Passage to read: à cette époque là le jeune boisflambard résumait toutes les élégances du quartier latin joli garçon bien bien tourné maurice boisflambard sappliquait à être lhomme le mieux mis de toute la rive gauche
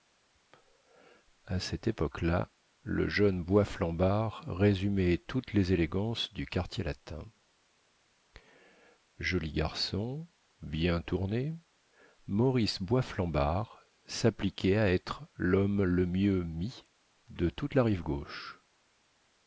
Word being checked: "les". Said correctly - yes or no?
yes